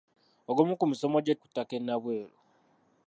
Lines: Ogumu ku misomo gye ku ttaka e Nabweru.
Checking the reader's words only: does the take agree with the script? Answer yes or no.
yes